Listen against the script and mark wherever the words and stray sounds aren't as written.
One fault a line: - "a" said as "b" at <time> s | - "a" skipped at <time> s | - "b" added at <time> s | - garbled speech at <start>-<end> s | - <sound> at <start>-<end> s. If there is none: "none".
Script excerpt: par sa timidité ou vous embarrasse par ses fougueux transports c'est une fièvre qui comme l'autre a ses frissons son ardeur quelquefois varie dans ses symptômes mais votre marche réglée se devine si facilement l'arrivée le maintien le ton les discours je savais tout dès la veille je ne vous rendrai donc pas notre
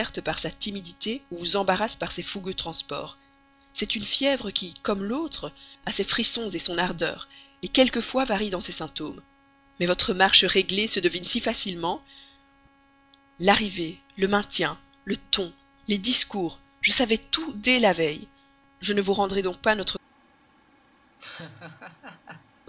- laugh at 21.2-22.5 s